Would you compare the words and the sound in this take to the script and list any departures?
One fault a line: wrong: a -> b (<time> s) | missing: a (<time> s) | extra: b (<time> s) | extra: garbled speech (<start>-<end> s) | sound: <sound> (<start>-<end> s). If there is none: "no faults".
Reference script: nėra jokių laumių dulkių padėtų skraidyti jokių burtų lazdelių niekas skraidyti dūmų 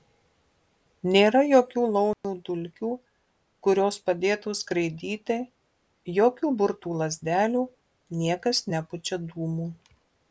sound: dropout (2.1-2.2 s)
extra: kurios (3.7 s)
wrong: skraidyti -> nepučia (8.8 s)